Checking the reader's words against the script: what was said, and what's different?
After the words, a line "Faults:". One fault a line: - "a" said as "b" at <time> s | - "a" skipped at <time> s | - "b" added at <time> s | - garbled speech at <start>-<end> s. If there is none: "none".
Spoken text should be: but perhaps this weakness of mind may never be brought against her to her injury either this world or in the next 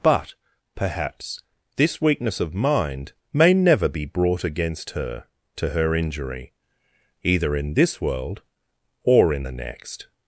but perhaps this weakness of mind may never be brought against her to her injury either in this world or in the next
Faults:
- "in" added at 7.5 s